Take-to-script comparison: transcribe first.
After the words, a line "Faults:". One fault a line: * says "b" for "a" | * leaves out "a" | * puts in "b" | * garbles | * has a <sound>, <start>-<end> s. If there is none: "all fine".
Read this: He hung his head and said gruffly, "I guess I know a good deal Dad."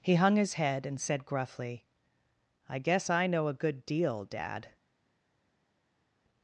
He hung his head and said gruffly, "I guess I know a good deal Dad."
Faults:
all fine